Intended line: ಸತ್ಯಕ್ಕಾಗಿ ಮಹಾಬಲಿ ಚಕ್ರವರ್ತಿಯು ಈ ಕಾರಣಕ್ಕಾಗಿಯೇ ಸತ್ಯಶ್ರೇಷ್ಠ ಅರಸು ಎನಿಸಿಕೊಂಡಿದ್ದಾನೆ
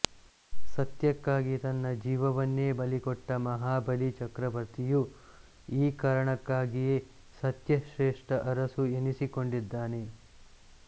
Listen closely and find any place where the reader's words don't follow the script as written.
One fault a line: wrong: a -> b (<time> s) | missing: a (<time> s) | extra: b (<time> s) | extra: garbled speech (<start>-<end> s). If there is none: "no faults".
extra: ತನ್ನ ಜೀವವನ್ನೇ ಬಲಿಕೊಟ್ಟ (1.6 s)